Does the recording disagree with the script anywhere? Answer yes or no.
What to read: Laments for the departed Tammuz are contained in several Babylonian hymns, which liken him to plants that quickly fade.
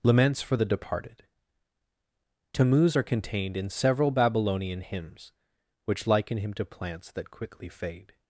no